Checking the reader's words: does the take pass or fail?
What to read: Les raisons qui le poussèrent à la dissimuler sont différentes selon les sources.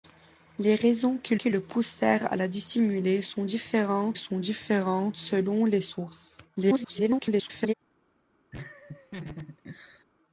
fail